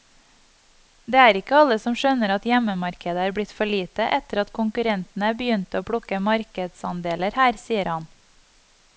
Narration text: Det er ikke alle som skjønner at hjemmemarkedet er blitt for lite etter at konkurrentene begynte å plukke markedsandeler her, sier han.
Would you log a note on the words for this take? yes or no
no